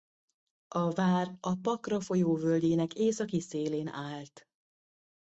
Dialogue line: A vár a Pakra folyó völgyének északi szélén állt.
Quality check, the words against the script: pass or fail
pass